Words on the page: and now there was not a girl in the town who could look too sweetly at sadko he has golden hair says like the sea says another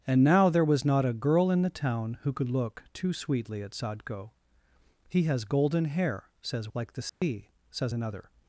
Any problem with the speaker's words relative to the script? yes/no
no